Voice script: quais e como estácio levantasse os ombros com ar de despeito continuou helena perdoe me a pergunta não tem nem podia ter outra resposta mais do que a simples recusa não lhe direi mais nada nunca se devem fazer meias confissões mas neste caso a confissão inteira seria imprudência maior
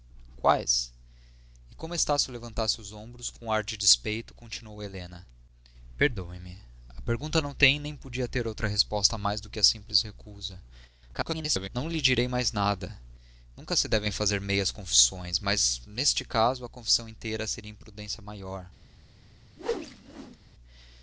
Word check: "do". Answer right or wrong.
right